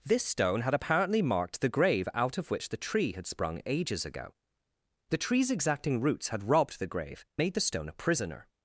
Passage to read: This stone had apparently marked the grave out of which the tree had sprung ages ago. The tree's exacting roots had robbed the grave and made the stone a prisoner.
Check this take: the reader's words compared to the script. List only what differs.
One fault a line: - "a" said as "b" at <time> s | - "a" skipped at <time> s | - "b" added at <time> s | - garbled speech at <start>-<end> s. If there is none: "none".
- "and" skipped at 7.2 s